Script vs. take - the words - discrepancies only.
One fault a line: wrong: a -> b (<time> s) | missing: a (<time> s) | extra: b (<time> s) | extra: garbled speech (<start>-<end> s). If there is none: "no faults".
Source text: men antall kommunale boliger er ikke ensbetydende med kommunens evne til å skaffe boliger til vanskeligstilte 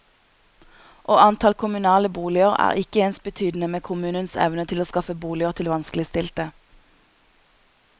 wrong: men -> og (1.0 s)